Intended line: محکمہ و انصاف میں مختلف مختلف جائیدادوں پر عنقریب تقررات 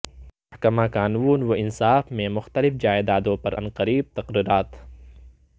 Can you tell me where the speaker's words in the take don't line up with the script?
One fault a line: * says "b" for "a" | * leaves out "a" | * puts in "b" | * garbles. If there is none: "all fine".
* puts in "قانون"
* leaves out "مختلف"